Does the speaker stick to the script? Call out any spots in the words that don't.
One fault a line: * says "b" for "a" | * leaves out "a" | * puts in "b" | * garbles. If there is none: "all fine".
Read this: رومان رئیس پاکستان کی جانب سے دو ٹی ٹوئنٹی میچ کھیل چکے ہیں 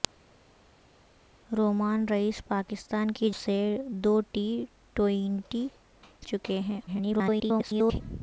* leaves out "جانب"
* leaves out "میچ کھیل"
* garbles